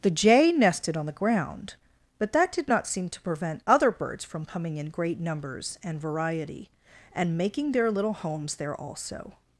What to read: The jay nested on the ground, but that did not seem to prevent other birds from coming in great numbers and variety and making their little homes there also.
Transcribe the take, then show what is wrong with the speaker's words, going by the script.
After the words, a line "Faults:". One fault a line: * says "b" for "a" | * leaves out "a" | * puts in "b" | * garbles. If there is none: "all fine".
The jay nested on the ground, but that did not seem to prevent other birds from coming in great numbers and variety and making their little homes there also.
Faults:
all fine